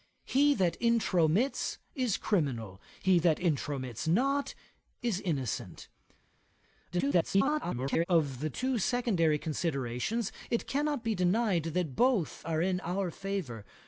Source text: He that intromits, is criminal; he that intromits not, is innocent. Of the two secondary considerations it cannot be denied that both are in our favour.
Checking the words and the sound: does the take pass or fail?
fail